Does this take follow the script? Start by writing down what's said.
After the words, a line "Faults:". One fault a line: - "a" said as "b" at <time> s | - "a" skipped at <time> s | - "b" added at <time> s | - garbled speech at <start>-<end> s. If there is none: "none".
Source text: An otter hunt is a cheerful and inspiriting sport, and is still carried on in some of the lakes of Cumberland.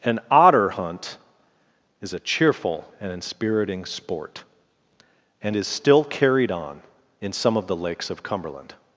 An otter hunt is a cheerful and inspiriting sport, and is still carried on in some of the lakes of Cumberland.
Faults:
none